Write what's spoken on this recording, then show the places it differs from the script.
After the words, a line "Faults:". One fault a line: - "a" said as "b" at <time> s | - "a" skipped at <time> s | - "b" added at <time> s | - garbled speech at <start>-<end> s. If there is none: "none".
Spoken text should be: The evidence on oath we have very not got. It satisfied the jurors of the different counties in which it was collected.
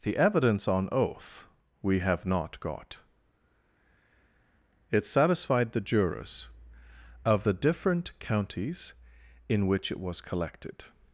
The evidence on oath we have not got. It satisfied the jurors of the different counties in which it was collected.
Faults:
- "very" skipped at 2.2 s